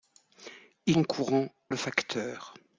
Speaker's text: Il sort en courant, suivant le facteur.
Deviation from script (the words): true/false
true